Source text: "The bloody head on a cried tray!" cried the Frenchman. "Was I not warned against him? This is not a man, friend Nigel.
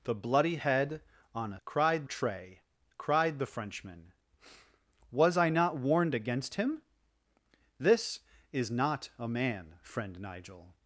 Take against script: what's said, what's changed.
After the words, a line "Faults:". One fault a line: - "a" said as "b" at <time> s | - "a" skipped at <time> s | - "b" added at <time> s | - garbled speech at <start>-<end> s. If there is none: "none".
"The bloody head on a cried tray!" cried the Frenchman. "Was I not warned against him? This is not a man, friend Nigel.
Faults:
none